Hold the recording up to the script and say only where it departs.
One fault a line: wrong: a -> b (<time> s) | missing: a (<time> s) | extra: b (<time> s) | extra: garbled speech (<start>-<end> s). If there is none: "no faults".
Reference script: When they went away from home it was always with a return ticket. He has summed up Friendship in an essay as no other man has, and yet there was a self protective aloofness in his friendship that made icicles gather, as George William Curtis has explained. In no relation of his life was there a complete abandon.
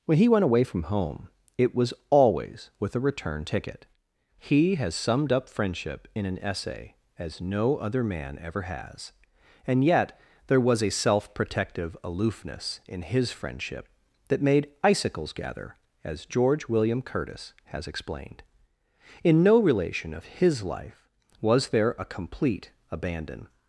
wrong: they -> he (0.2 s)
extra: ever (8.4 s)